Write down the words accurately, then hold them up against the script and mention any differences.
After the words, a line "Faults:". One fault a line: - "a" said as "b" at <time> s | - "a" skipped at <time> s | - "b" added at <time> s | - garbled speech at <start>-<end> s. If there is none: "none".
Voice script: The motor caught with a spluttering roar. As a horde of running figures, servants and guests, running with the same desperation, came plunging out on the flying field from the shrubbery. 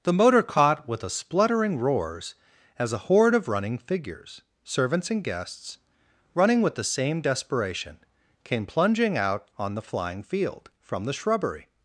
The motor caught with a spluttering roars. As a horde of running figures, servants and guests, running with the same desperation, came plunging out on the flying field from the shrubbery.
Faults:
- "roar" said as "roars" at 1.8 s